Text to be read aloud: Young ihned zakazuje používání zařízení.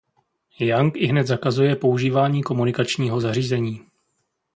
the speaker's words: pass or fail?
fail